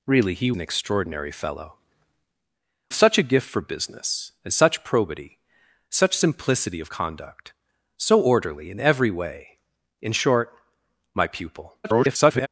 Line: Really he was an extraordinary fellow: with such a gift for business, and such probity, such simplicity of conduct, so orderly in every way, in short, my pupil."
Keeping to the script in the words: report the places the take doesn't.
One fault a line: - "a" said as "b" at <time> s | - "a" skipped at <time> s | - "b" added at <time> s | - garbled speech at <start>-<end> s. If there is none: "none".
- "was" skipped at 0.5 s
- "with" skipped at 1.8 s
- garbled speech at 11.8-12.5 s